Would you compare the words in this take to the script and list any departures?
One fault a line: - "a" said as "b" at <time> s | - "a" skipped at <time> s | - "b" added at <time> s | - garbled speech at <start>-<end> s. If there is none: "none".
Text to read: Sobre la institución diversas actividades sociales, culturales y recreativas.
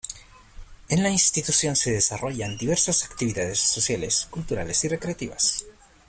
- "Sobre" said as "En" at 0.9 s
- "se desarrollan" added at 1.8 s